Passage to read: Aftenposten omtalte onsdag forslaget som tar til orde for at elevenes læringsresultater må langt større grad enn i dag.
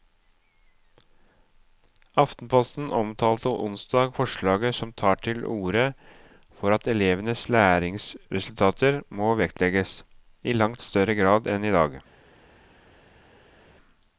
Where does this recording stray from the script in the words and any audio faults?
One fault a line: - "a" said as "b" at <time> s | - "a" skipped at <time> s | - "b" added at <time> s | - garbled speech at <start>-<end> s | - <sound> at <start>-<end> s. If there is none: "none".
- "vektlegges i" added at 9.4 s